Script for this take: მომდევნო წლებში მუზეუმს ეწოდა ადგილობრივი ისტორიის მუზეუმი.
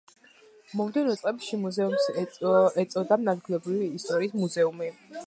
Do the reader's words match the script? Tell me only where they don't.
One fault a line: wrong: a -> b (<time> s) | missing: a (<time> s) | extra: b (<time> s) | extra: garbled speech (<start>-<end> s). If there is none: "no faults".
no faults